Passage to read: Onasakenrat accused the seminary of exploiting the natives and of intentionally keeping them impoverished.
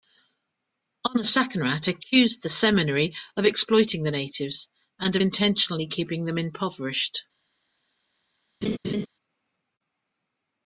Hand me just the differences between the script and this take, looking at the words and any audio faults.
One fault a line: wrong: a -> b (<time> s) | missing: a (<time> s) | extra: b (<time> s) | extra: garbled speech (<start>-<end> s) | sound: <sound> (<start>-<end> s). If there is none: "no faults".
sound: laugh (8.6-9.1 s)